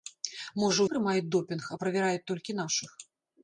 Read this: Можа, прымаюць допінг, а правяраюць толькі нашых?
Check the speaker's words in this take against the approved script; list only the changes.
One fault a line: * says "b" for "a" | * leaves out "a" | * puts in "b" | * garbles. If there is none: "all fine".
all fine